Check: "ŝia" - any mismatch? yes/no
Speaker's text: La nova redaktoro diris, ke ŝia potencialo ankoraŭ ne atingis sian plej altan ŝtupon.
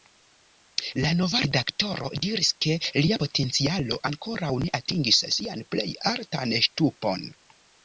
yes